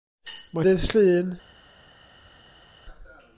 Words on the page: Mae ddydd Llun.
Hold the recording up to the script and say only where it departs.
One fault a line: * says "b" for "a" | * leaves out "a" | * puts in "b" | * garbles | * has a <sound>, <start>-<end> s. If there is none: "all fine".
all fine